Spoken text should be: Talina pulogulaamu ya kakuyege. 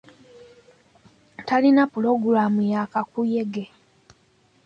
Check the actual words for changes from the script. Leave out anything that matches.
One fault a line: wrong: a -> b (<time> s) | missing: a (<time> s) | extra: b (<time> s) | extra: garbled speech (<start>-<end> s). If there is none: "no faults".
no faults